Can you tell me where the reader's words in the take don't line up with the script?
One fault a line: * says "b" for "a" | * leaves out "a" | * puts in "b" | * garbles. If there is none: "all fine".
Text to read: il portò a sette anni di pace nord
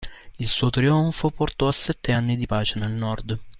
* puts in "suo trionfo"
* puts in "nel"